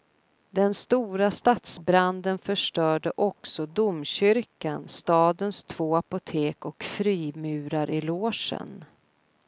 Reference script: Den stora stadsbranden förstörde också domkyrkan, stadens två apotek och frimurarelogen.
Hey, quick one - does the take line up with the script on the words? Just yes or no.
yes